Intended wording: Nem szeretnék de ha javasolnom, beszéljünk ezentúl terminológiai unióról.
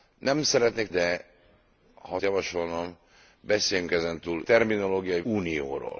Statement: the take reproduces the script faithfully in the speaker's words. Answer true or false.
true